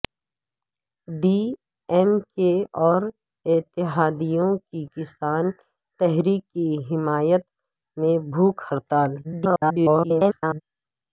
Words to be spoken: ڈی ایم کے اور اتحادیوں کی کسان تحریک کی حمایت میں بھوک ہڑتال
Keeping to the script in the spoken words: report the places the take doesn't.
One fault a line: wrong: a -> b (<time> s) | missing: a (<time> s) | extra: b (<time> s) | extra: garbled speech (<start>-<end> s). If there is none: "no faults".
extra: garbled speech (9.2-10.6 s)